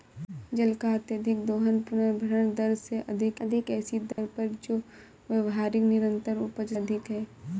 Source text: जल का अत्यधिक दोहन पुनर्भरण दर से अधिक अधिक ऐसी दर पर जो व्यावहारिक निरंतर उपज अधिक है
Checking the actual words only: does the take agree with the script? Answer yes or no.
yes